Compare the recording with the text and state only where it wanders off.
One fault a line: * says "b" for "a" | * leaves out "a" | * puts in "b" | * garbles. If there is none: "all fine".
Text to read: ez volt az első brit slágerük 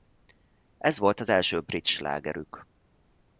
all fine